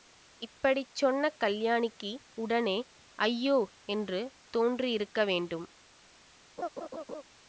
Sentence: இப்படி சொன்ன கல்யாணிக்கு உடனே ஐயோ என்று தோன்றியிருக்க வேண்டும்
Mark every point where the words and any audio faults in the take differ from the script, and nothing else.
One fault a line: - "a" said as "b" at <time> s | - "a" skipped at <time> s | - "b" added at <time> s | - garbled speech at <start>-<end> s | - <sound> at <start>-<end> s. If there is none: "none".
- laugh at 6.6-7.2 s